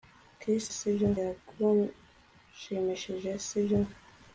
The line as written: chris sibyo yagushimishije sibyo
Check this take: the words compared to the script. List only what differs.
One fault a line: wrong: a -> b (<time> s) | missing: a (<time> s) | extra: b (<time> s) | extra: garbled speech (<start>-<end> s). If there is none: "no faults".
no faults